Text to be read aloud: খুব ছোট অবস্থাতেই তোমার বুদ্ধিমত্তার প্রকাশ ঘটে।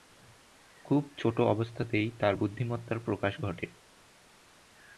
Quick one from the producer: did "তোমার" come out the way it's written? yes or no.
no